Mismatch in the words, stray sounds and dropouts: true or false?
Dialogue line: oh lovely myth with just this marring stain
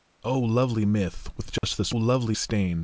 true